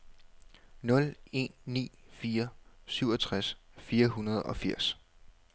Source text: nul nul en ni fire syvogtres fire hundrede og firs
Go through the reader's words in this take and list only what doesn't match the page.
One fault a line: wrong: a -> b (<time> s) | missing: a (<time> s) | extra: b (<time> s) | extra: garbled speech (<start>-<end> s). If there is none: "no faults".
missing: nul (1.1 s)